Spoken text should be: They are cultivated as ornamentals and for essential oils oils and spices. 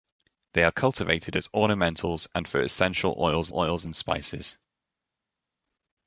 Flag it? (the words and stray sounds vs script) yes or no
no